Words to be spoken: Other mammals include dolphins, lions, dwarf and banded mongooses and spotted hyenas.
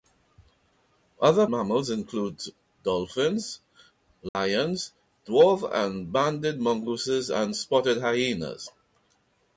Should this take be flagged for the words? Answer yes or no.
no